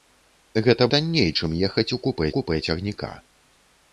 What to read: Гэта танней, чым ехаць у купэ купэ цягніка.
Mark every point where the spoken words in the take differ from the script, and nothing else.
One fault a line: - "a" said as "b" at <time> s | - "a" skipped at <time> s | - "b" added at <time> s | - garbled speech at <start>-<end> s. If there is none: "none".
none